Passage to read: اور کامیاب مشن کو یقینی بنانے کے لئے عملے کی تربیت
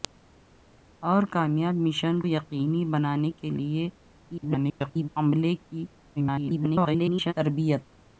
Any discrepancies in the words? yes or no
yes